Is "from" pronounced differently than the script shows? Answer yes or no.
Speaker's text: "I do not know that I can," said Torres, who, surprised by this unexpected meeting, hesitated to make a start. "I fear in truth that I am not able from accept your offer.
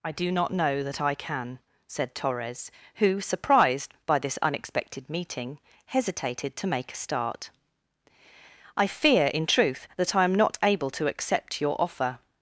yes